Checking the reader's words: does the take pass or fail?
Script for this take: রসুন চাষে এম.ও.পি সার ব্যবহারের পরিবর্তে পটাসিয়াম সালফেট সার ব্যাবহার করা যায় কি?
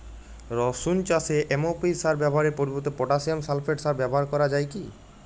pass